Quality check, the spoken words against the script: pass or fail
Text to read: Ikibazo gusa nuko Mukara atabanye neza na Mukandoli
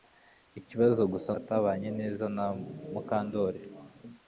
fail